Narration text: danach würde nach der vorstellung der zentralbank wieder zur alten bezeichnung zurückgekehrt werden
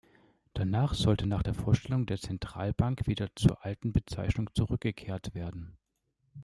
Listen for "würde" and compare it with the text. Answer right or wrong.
wrong